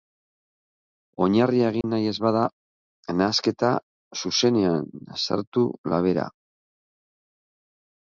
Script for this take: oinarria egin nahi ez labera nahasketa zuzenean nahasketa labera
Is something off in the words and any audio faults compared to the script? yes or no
yes